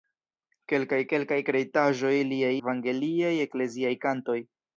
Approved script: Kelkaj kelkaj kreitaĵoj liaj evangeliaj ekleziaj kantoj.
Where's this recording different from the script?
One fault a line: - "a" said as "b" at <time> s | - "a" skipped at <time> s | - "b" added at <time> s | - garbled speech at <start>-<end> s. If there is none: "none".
none